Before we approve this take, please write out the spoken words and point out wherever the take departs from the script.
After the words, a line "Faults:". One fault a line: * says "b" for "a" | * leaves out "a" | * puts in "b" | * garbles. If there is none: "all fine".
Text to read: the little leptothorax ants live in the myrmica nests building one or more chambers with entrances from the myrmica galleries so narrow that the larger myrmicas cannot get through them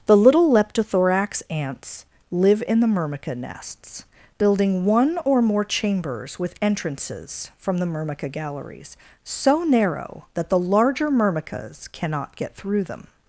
the little leptothorax ants live in the myrmica nests building one or more chambers with entrances from the myrmica galleries so narrow that the larger myrmicas cannot get through them
Faults:
all fine